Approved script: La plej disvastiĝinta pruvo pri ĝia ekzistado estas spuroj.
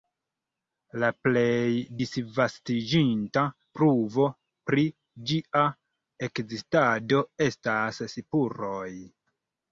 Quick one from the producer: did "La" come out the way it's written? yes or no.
yes